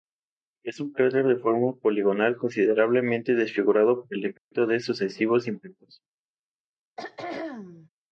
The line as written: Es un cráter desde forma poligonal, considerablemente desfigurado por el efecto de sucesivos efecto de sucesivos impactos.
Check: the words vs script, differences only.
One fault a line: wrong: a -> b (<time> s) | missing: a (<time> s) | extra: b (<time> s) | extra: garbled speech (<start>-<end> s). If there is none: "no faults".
wrong: desde -> de (1.3 s)
missing: efecto de sucesivos (5.5 s)